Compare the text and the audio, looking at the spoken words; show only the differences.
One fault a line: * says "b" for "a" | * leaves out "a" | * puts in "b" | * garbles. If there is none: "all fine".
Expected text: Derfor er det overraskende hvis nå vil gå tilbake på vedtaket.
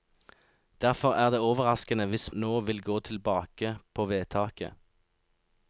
all fine